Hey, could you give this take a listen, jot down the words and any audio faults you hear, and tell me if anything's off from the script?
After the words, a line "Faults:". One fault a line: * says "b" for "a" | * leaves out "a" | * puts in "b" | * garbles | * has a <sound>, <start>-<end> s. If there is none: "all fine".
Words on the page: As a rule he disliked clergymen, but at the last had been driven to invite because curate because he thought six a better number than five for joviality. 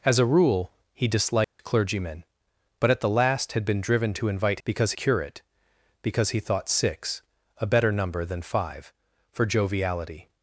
As a rule he disliked clergymen, but at the last had been driven to invite because curate because he thought six a better number than five for joviality.
Faults:
* has a dropout, 1.4-1.6 s